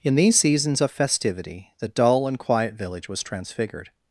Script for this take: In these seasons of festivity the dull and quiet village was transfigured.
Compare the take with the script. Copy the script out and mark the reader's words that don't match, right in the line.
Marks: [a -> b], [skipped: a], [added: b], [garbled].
In these seasons of festivity the dull and quiet village was transfigured.